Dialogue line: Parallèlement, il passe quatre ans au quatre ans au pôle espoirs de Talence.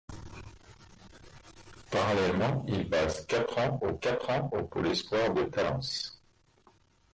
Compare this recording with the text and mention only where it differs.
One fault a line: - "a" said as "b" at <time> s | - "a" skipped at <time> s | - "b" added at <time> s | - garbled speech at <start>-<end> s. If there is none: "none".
none